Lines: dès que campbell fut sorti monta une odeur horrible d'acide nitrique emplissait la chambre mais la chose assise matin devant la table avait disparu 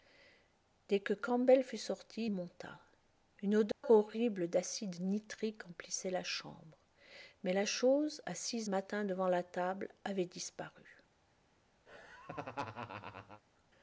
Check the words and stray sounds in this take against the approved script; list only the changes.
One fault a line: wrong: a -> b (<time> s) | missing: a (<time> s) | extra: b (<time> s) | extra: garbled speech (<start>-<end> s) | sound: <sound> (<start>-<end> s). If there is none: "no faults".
sound: dropout (3.7-3.8 s)
sound: laugh (11.9-13.4 s)